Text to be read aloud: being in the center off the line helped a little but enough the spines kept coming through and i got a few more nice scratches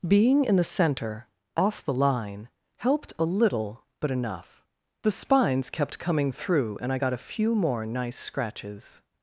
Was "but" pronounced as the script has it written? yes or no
yes